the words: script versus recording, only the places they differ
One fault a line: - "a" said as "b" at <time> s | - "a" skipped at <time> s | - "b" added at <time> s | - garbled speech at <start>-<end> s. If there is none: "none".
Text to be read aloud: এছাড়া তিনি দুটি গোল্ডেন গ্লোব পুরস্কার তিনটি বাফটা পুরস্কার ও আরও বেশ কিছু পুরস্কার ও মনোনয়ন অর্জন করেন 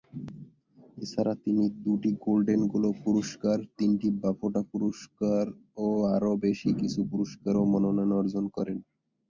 none